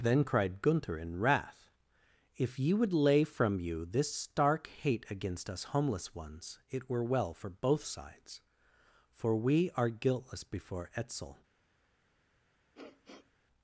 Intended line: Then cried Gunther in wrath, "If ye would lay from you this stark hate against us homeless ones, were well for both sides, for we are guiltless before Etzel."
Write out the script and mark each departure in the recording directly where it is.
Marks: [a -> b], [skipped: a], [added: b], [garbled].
Then cried Gunther in wrath, "If ye would lay from you this stark hate against us homeless ones, [added: it] were well for both sides, for we are guiltless before Etzel."